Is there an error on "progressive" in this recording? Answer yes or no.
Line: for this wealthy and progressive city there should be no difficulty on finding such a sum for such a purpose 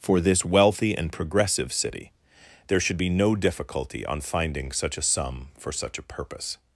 no